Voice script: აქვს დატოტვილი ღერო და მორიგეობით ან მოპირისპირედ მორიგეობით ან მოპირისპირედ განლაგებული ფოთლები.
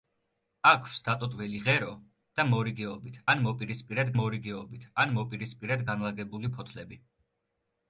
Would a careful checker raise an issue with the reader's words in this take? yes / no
no